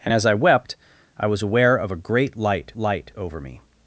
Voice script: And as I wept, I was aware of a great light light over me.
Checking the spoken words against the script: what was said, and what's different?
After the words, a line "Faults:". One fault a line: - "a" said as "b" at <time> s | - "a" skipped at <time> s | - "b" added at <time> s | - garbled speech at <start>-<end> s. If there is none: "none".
And as I wept, I was aware of a great light light over me.
Faults:
none